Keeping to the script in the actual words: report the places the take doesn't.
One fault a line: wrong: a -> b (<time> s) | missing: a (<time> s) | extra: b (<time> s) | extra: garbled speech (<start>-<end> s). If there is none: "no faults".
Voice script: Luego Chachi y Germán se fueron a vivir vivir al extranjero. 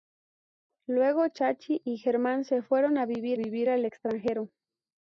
no faults